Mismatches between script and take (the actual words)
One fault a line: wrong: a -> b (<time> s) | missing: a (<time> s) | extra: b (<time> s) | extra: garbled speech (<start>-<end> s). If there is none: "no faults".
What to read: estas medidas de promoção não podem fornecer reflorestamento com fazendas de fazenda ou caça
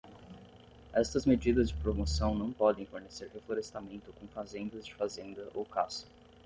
no faults